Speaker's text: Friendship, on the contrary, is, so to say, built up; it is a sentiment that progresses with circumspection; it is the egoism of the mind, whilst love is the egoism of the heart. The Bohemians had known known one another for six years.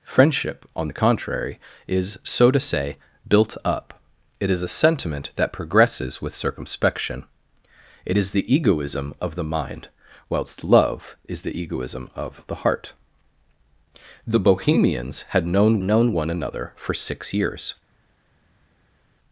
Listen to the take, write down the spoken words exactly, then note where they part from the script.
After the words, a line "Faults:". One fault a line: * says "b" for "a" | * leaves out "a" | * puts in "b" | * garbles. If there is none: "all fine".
Friendship, on the contrary, is, so to say, built up; it is a sentiment that progresses with circumspection; it is the egoism of the mind, whilst love is the egoism of the heart. The Bohemians had known known one another for six years.
Faults:
all fine